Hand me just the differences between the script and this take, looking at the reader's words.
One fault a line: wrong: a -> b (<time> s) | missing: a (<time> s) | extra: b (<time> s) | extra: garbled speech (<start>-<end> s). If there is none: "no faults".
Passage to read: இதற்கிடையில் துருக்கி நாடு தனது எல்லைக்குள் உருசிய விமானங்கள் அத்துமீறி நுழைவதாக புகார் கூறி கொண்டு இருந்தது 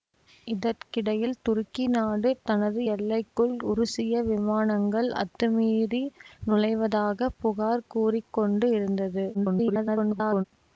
extra: garbled speech (9.3-10.4 s)